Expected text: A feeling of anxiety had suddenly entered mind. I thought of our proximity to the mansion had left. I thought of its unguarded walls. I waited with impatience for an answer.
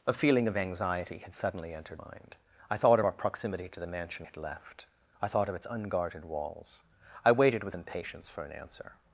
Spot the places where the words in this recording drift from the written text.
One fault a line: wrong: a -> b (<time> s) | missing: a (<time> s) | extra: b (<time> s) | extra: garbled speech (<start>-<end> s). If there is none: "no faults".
no faults